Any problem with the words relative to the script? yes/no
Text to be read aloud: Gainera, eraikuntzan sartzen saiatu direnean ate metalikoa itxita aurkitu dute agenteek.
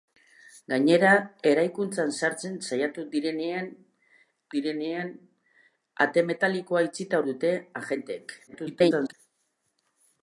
yes